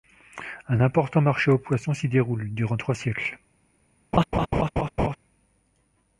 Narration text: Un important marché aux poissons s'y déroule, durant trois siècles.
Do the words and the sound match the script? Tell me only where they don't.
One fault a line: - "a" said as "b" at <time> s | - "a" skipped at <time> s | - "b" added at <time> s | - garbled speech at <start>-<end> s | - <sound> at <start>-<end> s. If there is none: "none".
- laugh at 4.1-5.2 s